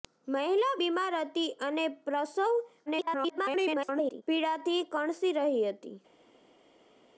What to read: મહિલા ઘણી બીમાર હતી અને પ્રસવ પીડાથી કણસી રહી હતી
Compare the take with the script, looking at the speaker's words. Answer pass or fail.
fail